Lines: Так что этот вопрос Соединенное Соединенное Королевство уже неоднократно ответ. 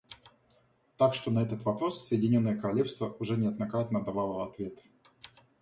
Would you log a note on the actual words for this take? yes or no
yes